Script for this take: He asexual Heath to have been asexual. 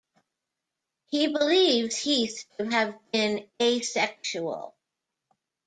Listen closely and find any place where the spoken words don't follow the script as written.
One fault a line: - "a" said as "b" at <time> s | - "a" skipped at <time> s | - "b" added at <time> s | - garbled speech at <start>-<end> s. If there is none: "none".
- "asexual" said as "believes" at 1.3 s